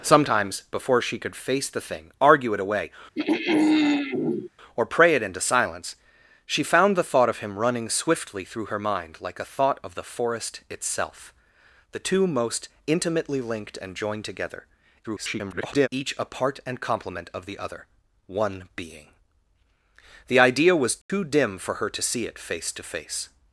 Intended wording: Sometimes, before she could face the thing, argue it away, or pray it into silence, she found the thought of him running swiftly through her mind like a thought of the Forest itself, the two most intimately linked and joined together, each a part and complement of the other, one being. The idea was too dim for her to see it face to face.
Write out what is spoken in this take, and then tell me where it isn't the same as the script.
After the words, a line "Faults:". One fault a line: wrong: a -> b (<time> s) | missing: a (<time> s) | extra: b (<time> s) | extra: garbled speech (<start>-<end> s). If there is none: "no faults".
Sometimes, before she could face the thing, argue it away, or pray it into silence, she found the thought of him running swiftly through her mind like a thought of the Forest itself, the two most intimately linked and joined together, [garbled] each a part and complement of the other, one being. The idea was too dim for her to see it face to face.
Faults:
extra: garbled speech (15.0-15.9 s)